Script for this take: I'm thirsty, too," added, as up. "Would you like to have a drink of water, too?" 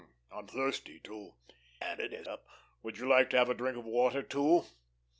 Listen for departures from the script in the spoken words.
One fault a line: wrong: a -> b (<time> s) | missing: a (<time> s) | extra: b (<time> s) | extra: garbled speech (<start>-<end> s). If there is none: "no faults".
no faults